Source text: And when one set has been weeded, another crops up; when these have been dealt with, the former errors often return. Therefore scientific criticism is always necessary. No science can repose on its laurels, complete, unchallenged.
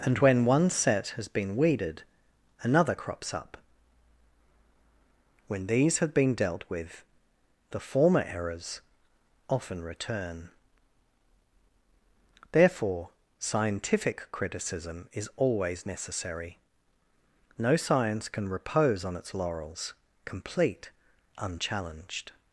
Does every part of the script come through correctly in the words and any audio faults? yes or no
yes